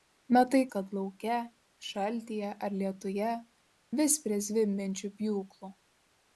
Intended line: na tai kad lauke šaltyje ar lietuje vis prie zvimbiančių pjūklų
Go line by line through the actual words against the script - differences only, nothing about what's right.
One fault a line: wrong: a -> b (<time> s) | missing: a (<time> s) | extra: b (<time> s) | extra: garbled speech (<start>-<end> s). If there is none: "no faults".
no faults